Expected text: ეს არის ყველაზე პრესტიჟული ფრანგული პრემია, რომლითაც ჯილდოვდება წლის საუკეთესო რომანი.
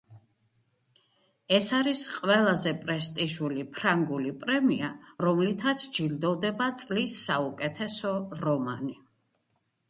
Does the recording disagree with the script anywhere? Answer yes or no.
no